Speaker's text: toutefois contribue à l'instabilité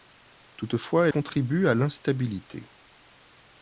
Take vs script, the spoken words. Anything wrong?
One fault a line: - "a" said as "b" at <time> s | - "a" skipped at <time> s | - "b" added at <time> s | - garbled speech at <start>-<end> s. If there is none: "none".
none